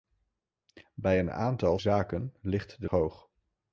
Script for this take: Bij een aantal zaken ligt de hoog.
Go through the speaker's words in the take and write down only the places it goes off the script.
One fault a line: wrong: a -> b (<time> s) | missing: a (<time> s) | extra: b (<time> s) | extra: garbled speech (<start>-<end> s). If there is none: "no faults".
no faults